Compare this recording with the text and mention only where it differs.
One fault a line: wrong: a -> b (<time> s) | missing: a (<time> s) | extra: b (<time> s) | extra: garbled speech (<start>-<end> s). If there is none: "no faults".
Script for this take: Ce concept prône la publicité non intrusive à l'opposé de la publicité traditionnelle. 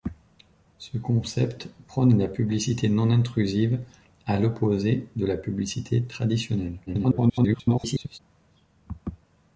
extra: garbled speech (6.9-8.2 s)